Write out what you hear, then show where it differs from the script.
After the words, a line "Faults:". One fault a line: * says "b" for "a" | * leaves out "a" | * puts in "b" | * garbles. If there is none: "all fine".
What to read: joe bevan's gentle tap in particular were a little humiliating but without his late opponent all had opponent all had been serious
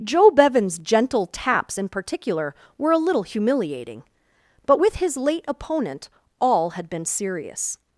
joe bevan's gentle taps in particular were a little humiliating but with his late opponent all had been serious
Faults:
* says "taps" for "tap"
* says "with" for "without"
* leaves out "opponent all had"